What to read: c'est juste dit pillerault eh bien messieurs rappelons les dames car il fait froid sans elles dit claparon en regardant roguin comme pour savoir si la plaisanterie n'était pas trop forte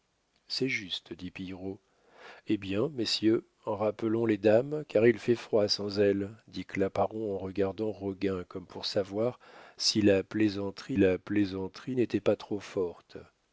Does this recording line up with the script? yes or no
no